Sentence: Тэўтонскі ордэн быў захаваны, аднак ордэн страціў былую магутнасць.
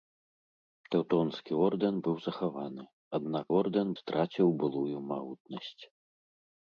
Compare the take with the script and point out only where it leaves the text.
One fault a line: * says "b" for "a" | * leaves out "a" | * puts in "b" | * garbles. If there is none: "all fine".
all fine